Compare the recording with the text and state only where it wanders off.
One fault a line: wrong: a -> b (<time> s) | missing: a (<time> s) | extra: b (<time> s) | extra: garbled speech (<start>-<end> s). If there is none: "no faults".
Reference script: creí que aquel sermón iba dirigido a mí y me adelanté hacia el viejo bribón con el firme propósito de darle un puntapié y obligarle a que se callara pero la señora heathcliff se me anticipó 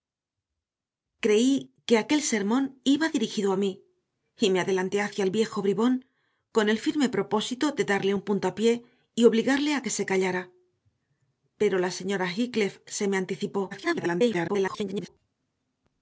extra: garbled speech (13.7-15.1 s)